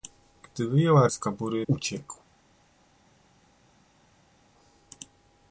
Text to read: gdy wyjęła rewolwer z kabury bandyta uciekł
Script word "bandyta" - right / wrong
wrong